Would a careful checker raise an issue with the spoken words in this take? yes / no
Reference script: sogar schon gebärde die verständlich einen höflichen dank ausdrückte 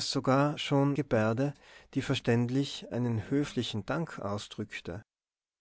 no